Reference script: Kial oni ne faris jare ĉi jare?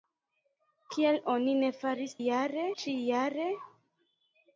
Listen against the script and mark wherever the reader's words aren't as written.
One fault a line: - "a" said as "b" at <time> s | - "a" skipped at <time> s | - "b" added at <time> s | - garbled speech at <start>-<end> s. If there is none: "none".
none